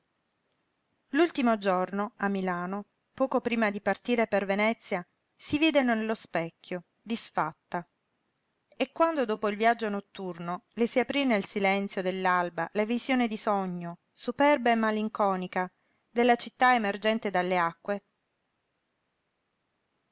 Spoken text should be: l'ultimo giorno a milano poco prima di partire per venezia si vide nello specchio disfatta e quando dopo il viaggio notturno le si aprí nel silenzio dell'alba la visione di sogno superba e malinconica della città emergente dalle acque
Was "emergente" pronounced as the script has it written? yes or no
yes